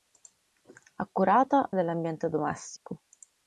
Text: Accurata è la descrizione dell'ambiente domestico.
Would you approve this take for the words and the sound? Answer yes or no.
no